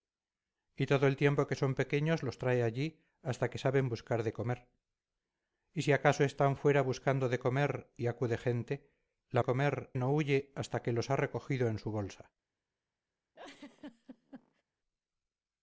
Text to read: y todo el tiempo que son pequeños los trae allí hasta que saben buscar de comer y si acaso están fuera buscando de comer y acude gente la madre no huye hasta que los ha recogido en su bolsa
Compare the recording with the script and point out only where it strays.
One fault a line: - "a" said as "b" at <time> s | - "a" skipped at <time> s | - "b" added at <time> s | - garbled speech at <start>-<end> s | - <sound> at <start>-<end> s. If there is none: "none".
- "madre" said as "comer" at 9.4 s
- laugh at 13.3-14.6 s